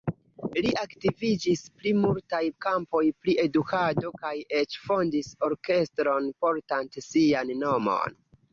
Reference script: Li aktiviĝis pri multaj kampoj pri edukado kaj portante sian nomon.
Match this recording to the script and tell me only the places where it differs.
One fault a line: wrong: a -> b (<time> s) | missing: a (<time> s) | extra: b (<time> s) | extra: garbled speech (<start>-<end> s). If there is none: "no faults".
extra: eĉ fondis orkestron (4.6 s)